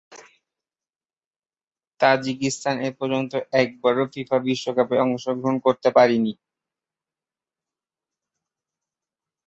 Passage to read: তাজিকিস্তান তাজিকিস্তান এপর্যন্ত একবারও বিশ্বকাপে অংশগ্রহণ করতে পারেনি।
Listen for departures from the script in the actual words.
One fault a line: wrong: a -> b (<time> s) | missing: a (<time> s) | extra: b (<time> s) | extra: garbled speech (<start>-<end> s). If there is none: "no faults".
missing: তাজিকিস্তান (2.8 s)
extra: ফিফা (4.1 s)